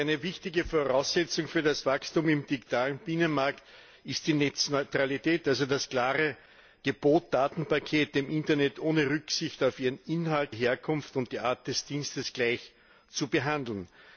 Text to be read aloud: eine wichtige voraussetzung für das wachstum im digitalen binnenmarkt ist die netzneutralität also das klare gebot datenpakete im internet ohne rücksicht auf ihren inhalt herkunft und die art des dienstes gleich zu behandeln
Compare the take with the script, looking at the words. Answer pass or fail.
pass